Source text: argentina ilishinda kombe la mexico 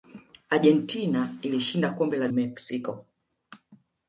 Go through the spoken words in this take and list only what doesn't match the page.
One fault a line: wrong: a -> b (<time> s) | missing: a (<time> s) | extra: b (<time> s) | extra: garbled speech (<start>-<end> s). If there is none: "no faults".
no faults